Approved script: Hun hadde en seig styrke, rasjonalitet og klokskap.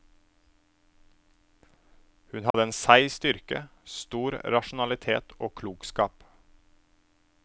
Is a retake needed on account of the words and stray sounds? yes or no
yes